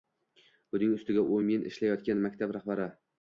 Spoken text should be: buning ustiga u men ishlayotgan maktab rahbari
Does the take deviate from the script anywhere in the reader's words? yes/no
no